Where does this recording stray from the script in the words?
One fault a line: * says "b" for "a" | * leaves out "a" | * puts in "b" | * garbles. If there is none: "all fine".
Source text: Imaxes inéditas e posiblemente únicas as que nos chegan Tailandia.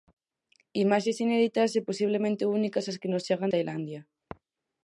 all fine